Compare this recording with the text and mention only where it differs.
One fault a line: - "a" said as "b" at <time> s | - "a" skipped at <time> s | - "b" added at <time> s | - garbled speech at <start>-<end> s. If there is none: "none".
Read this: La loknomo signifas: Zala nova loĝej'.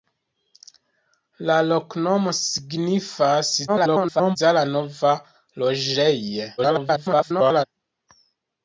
- garbled speech at 3.7-4.4 s
- garbled speech at 6.6-7.7 s